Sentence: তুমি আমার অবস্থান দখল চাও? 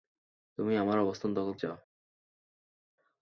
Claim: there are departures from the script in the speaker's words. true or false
false